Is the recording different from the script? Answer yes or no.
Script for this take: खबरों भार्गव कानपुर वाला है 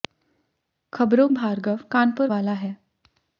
no